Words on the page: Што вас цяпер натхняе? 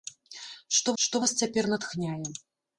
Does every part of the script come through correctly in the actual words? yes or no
no